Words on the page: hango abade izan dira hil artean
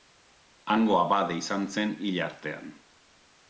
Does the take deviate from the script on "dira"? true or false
true